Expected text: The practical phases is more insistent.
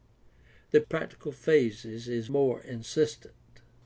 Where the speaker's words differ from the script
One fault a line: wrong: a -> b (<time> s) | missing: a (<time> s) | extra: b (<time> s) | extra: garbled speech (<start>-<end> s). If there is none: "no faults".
no faults